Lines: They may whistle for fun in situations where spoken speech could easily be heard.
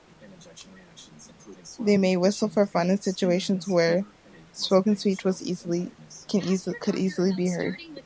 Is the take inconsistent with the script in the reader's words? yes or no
no